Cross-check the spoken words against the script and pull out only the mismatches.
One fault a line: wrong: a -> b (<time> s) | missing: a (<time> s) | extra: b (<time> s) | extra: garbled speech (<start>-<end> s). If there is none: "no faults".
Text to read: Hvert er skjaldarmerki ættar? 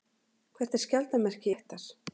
no faults